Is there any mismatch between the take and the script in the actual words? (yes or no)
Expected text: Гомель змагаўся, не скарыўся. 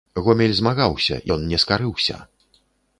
yes